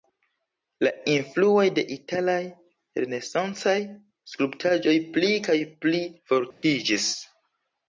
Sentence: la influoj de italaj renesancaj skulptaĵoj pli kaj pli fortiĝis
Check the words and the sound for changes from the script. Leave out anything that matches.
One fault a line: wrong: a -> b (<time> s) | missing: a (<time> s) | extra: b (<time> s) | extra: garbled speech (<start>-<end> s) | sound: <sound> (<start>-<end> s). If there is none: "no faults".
sound: dropout (6.5-6.6 s)